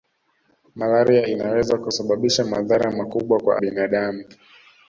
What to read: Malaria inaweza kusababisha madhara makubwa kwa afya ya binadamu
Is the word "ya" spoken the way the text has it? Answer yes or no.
no